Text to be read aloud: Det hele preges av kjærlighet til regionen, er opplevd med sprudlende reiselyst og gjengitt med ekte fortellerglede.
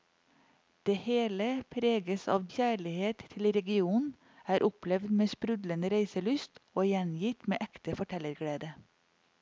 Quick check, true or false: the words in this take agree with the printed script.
true